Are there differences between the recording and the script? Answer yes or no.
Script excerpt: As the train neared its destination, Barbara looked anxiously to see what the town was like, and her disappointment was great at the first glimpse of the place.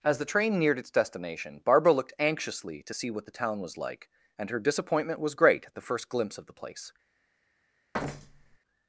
no